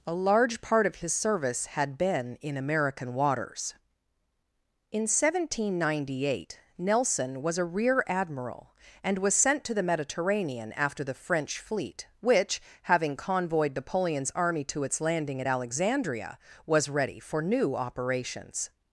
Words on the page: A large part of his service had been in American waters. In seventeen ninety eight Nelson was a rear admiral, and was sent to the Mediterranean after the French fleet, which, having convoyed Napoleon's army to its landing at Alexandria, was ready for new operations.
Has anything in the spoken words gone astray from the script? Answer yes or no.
no